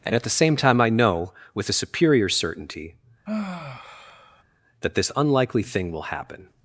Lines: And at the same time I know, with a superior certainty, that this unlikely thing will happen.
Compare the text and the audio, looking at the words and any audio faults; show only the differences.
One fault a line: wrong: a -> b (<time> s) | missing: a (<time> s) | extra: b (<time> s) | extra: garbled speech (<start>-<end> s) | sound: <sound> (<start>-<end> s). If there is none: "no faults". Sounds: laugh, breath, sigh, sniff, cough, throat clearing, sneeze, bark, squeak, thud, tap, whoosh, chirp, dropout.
sound: sigh (3.3-4.4 s)